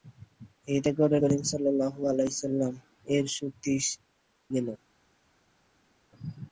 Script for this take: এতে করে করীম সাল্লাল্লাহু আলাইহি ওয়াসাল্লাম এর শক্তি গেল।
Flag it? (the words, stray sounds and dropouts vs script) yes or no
no